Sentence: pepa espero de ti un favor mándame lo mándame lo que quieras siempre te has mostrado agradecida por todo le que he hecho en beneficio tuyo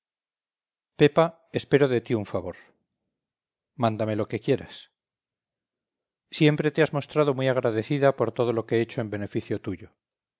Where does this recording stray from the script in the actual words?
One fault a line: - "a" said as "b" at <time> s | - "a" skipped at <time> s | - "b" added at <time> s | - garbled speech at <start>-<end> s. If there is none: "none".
- "mándame lo" skipped at 4.3 s
- "muy" added at 7.3 s
- "le" said as "lo" at 8.5 s